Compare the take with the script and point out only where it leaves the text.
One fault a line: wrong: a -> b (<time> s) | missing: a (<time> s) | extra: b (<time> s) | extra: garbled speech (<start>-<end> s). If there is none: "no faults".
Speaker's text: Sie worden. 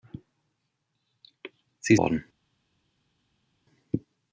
no faults